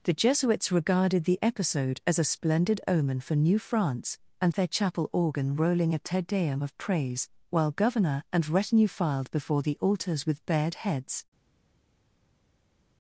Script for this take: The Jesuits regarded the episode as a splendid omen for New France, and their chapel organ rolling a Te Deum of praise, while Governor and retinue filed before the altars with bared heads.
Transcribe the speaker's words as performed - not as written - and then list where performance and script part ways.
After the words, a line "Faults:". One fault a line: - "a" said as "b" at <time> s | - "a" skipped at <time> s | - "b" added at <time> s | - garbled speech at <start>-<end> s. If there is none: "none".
The Jesuits regarded the episode as a splendid omen for New France, and their chapel organ rolling a Te Deum of praise, while Governor and retinue filed before the altars with bared heads.
Faults:
none